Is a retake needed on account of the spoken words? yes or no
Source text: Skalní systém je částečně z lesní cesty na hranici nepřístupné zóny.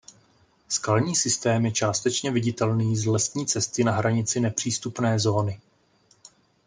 yes